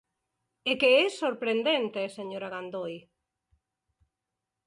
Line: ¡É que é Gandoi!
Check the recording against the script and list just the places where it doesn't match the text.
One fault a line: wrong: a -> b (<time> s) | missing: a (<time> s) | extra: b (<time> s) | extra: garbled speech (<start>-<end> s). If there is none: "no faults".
extra: sorprendente señora (1.2 s)